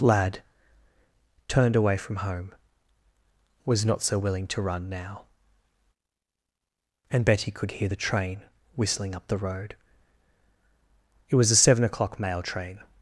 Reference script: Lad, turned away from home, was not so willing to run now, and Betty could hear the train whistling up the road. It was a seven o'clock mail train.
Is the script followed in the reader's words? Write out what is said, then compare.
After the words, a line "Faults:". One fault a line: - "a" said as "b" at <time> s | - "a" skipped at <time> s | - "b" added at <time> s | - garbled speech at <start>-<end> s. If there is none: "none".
Lad, turned away from home, was not so willing to run now, and Betty could hear the train whistling up the road. It was a seven o'clock mail train.
Faults:
none